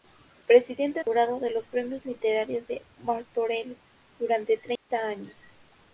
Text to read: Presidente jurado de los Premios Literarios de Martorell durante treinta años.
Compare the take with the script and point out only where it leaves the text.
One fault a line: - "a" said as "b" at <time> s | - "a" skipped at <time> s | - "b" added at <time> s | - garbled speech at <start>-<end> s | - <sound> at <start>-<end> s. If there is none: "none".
- dropout at 4.8-4.9 s